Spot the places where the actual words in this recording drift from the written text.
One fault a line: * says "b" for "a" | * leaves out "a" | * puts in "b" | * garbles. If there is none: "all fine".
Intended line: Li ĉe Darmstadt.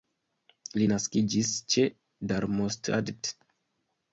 * puts in "naskiĝis"